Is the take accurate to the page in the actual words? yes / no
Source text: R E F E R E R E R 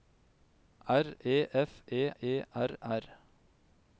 no